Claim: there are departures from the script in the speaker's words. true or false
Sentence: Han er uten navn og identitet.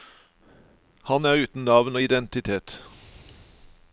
false